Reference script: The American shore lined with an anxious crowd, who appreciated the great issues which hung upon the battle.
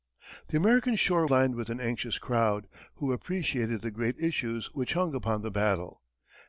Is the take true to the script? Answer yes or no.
yes